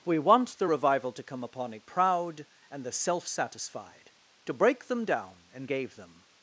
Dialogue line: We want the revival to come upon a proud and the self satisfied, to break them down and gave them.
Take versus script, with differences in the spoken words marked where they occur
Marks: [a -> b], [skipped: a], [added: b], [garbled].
We want the revival to come upon a proud and the self satisfied, to break them down and gave them.